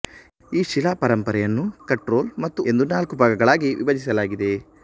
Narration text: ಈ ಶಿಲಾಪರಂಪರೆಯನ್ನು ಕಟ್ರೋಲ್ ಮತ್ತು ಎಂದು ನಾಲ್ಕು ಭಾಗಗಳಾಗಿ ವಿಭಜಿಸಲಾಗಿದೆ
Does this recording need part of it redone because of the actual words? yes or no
no